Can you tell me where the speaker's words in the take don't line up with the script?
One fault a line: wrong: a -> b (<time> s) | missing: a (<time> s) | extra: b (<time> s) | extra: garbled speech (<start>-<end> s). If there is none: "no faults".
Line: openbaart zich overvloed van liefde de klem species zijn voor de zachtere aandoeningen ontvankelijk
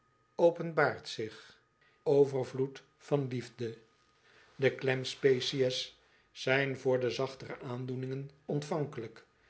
no faults